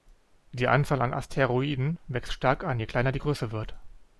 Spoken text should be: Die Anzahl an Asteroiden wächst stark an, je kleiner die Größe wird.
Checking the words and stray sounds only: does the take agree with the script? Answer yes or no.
yes